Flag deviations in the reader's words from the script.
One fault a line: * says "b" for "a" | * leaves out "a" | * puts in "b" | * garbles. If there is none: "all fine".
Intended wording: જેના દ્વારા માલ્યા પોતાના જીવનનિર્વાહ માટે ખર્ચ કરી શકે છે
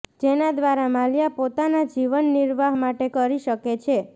* leaves out "ખર્ચ"